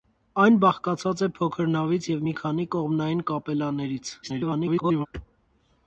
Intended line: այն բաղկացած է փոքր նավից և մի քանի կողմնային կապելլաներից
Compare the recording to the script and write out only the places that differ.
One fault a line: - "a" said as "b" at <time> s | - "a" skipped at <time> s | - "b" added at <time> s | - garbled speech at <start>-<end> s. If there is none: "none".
- garbled speech at 4.2-5.1 s